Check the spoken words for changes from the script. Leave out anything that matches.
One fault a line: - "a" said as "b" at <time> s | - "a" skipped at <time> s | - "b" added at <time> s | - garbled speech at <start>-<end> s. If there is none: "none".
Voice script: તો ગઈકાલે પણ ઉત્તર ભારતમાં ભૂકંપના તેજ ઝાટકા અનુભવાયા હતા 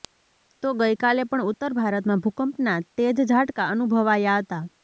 none